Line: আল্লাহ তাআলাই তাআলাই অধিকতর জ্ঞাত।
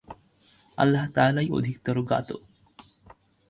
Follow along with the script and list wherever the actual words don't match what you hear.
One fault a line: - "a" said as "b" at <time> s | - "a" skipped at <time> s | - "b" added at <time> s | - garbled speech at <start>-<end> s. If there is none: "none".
- "তাআলাই" skipped at 1.5 s